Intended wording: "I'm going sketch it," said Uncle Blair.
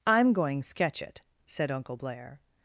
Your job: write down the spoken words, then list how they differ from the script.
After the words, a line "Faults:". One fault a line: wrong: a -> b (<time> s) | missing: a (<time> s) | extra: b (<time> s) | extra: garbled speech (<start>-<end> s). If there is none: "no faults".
"I'm going sketch it," said Uncle Blair.
Faults:
no faults